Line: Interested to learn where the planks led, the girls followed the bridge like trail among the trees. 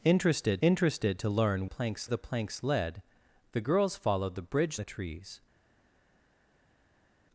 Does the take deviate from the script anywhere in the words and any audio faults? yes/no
yes